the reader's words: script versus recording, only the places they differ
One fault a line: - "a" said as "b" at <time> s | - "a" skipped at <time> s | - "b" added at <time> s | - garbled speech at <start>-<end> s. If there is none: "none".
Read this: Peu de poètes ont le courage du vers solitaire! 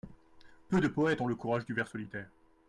none